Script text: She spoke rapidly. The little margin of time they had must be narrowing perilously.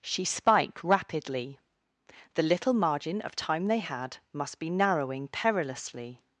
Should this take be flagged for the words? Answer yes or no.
yes